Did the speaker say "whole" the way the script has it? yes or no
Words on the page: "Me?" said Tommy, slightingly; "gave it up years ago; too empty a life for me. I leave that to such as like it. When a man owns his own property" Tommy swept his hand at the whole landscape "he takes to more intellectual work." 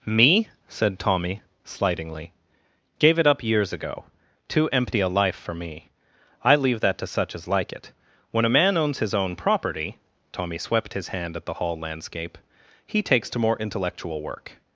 no